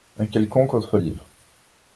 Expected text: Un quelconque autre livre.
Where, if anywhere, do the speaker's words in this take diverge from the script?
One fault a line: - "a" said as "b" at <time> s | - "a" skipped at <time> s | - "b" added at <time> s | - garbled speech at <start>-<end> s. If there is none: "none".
none